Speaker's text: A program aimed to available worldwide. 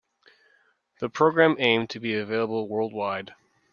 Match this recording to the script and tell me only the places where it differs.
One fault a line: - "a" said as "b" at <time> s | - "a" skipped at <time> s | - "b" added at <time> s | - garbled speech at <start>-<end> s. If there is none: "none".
- "A" said as "The" at 1.0 s
- "be" added at 2.0 s